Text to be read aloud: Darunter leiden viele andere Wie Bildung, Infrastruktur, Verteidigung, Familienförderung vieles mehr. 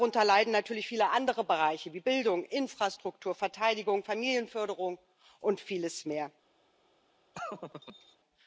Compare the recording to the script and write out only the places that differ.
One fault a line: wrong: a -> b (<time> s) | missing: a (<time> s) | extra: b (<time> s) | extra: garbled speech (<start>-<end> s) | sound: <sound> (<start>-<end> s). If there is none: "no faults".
extra: natürlich (0.5 s)
extra: Bereiche (1.4 s)
extra: und (5.4 s)
sound: laugh (7.3-8.2 s)